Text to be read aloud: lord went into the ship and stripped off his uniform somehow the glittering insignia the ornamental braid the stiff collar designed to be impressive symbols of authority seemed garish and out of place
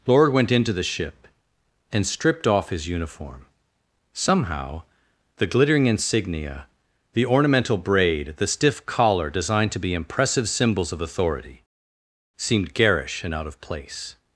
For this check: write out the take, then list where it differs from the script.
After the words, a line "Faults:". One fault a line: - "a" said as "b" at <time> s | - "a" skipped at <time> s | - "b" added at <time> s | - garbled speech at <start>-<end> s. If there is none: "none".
lord went into the ship and stripped off his uniform somehow the glittering insignia the ornamental braid the stiff collar designed to be impressive symbols of authority seemed garish and out of place
Faults:
none